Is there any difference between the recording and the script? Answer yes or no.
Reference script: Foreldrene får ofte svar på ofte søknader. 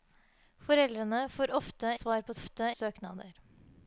no